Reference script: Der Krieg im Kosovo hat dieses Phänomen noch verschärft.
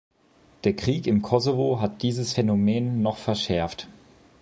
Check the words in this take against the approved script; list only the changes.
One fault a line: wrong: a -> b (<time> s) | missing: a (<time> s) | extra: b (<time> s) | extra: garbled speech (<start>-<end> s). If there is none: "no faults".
no faults